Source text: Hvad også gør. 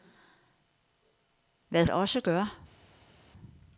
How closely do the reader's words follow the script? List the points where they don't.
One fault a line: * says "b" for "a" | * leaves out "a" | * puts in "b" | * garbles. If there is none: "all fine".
all fine